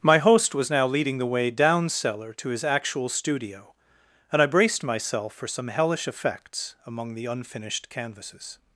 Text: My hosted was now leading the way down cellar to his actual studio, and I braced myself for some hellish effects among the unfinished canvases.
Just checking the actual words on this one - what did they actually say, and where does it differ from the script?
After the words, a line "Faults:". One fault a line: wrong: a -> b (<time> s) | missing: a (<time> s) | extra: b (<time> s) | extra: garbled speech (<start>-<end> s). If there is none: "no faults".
My host was now leading the way down cellar to his actual studio, and I braced myself for some hellish effects among the unfinished canvases.
Faults:
wrong: hosted -> host (0.2 s)